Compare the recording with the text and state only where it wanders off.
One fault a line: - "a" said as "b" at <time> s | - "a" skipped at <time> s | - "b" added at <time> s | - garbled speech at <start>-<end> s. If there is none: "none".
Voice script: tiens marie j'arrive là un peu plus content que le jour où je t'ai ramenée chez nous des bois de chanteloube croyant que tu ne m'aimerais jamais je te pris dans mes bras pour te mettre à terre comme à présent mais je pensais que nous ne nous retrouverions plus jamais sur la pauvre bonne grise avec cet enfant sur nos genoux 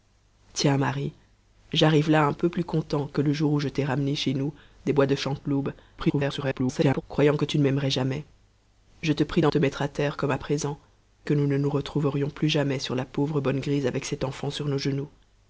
- garbled speech at 6.0-7.0 s
- "mes bras pour" skipped at 9.5 s
- "mais je pensais" skipped at 10.8 s